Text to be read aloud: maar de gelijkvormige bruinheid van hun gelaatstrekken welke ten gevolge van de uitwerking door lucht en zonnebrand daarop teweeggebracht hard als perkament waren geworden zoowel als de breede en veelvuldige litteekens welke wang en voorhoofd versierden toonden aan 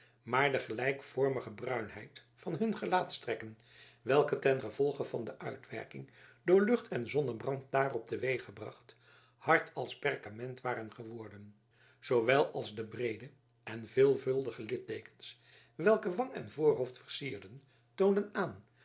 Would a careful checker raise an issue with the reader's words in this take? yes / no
no